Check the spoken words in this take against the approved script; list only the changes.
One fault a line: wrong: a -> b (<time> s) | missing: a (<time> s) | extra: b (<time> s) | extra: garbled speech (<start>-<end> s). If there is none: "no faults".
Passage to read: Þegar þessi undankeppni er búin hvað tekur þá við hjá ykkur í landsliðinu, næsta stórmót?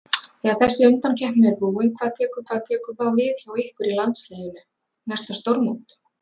extra: hvað tekur (2.5 s)